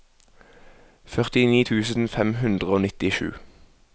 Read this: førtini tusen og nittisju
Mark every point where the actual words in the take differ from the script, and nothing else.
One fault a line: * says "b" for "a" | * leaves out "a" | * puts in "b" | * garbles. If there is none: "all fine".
* puts in "fem hundre"